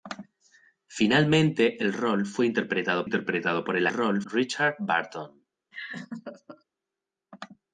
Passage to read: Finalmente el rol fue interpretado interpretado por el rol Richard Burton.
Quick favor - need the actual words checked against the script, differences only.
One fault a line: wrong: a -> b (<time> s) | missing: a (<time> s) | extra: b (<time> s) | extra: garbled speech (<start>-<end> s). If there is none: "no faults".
no faults